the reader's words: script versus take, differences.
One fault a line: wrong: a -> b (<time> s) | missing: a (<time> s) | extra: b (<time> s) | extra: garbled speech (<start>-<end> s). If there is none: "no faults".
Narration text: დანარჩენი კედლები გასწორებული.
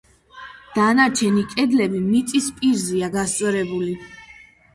extra: მიწის პირზეა (2.1 s)